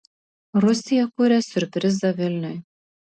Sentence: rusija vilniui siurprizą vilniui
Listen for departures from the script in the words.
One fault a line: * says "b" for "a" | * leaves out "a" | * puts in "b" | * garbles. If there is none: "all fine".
* says "kuria" for "vilniui"